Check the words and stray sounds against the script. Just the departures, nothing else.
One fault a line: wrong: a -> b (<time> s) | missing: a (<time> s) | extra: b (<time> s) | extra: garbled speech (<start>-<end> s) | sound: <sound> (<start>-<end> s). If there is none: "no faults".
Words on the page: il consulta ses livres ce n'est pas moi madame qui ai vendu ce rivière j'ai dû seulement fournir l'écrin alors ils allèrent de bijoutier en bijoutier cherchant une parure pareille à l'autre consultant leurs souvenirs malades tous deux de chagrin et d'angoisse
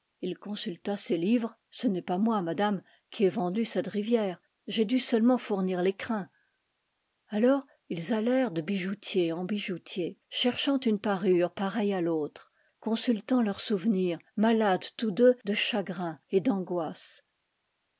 wrong: ce -> cette (3.6 s)